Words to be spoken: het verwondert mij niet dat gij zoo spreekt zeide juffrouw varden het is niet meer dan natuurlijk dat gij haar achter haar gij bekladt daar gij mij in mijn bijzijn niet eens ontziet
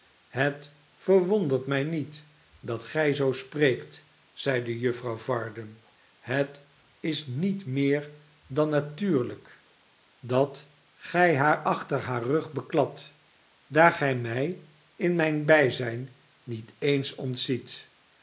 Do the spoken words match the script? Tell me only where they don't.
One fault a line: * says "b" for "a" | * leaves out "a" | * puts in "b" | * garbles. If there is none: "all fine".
* says "rug" for "gij"